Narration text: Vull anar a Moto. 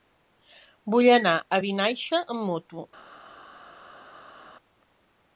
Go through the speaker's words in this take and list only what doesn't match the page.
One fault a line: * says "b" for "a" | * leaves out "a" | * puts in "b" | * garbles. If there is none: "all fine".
* puts in "Vinaixa amb"